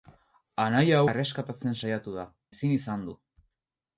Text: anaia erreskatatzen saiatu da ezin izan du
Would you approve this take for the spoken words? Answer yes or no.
yes